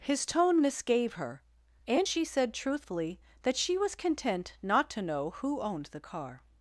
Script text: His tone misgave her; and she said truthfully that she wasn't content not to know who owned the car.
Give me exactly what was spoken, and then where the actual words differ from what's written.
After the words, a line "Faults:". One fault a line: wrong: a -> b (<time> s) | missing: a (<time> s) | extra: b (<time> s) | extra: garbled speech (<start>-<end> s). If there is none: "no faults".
His tone misgave her; and she said truthfully that she was content not to know who owned the car.
Faults:
wrong: wasn't -> was (3.8 s)